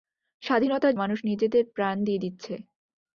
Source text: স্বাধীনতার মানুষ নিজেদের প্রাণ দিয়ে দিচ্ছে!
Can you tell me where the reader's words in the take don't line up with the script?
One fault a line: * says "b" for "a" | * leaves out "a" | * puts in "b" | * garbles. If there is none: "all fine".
all fine